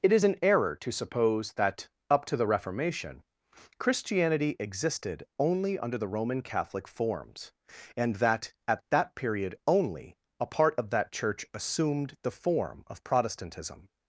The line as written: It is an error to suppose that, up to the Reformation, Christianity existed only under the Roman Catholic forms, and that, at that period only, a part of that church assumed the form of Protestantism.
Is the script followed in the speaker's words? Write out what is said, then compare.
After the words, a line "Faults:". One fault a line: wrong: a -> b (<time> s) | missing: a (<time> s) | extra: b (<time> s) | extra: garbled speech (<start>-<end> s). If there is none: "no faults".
It is an error to suppose that, up to the Reformation, Christianity existed only under the Roman Catholic forms, and that, at that period only, a part of that church assumed the form of Protestantism.
Faults:
no faults